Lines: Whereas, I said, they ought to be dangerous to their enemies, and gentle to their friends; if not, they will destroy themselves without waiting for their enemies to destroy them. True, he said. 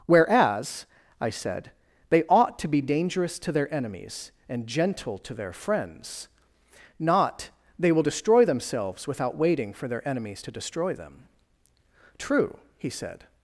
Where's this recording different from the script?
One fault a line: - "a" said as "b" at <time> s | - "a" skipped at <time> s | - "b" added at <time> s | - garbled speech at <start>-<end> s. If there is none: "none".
- "if" skipped at 6.3 s